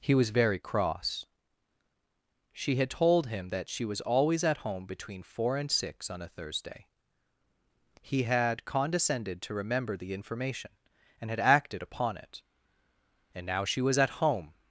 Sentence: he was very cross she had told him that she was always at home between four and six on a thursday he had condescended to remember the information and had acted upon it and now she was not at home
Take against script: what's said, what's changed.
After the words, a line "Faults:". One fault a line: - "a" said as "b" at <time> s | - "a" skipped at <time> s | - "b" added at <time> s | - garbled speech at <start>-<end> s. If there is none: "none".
he was very cross she had told him that she was always at home between four and six on a thursday he had condescended to remember the information and had acted upon it and now she was at home
Faults:
- "not" skipped at 14.0 s